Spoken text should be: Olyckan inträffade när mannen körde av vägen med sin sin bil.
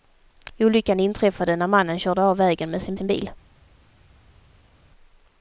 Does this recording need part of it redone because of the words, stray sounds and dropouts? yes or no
no